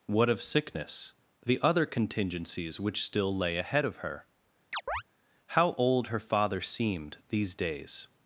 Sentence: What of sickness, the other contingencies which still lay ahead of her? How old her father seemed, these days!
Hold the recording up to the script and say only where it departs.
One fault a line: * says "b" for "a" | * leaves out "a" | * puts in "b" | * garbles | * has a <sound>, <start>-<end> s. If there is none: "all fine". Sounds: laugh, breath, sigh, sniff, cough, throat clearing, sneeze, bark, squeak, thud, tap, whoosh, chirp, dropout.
* has a chirp, 4.7-5.0 s